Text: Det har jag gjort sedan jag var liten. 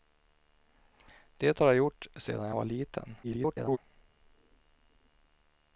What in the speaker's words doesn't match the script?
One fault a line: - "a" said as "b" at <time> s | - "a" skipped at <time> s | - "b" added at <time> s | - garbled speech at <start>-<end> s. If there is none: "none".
- garbled speech at 3.2-3.8 s